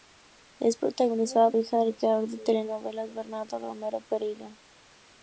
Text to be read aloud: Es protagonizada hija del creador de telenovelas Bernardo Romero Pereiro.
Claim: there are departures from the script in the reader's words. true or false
false